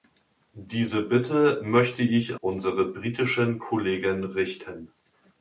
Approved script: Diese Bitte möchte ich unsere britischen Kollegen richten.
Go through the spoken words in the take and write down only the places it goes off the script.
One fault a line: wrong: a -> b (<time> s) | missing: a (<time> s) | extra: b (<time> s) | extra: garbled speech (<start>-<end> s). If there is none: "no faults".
no faults